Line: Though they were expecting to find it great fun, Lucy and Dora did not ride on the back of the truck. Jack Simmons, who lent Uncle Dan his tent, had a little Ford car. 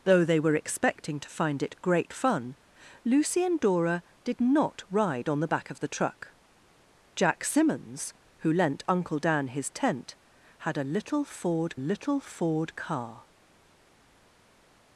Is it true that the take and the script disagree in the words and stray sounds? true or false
true